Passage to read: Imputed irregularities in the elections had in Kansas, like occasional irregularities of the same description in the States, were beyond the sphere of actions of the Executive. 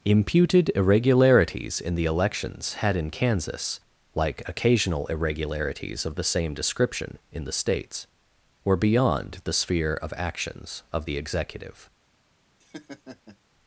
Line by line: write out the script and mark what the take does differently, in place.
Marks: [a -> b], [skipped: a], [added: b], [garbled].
Imputed irregularities in the elections had in Kansas, like occasional irregularities of the same description in the States, were beyond the sphere of actions of the Executive.